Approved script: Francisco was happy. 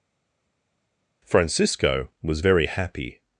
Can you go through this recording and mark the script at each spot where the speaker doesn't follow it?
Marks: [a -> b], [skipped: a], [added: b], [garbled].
Francisco was [added: very] happy.